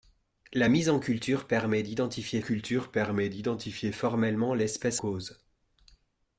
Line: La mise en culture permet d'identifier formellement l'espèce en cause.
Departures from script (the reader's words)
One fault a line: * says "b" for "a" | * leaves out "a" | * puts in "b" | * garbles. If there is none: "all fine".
* puts in "culture permet d'identifier"
* leaves out "en"